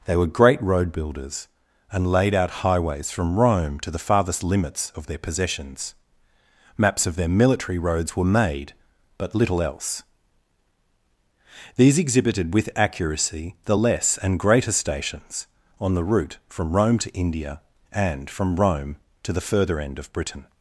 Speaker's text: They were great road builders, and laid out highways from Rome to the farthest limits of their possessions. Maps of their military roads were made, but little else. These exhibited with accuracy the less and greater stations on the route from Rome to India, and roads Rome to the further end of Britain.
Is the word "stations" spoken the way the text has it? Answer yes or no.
yes